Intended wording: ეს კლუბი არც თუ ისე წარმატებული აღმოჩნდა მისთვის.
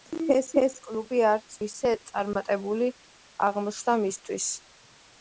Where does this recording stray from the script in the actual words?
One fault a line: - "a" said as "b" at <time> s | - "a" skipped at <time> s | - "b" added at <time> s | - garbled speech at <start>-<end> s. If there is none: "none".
- "ეს" added at 0.6 s
- "თუ" skipped at 1.6 s